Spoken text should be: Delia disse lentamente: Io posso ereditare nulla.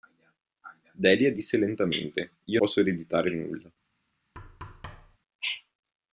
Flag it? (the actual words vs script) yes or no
no